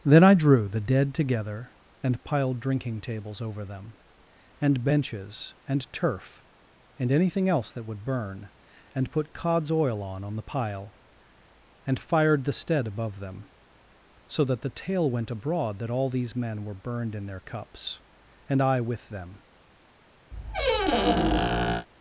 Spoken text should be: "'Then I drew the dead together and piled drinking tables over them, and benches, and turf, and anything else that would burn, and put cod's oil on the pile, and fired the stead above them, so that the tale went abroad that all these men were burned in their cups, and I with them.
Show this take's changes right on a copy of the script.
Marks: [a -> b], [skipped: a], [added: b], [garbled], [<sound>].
"'Then I drew the dead together and piled drinking tables over them, and benches, and turf, and anything else that would burn, and put cod's oil on [added: on] the pile, and fired the stead above them, so that the tale went abroad that all these men were burned in their cups, and I with them. [squeak]